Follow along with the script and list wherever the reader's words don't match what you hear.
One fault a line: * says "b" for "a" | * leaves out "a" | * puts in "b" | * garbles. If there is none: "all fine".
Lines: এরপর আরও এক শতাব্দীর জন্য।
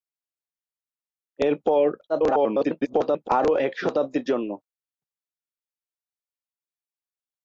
* garbles